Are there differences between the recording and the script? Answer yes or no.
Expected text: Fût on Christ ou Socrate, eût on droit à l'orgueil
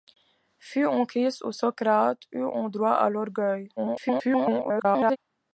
yes